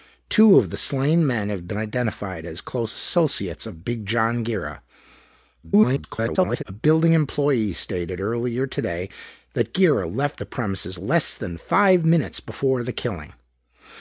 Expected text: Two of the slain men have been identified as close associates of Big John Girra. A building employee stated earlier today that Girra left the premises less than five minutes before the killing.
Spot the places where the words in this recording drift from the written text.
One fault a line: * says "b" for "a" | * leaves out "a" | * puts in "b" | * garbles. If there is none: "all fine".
* garbles